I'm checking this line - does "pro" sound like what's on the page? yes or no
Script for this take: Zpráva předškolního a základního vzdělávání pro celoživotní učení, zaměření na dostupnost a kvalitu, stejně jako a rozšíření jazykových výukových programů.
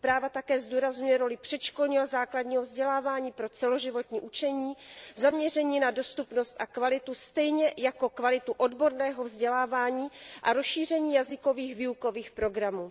yes